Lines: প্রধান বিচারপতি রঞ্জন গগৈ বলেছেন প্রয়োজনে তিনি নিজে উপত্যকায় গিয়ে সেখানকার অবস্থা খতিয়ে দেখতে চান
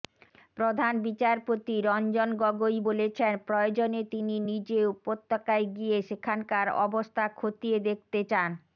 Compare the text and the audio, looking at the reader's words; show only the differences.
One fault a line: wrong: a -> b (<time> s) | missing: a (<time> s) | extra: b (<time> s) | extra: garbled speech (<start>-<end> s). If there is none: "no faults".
no faults